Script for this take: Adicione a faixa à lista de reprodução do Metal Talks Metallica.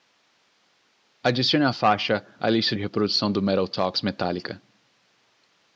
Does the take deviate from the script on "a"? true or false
false